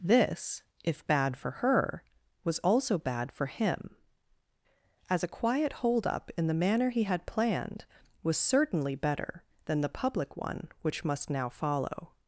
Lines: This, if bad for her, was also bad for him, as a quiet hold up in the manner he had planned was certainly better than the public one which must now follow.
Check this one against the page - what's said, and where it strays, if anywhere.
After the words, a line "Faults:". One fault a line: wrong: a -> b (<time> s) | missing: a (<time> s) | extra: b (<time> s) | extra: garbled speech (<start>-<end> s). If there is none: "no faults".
This, if bad for her, was also bad for him, as a quiet hold up in the manner he had planned was certainly better than the public one which must now follow.
Faults:
no faults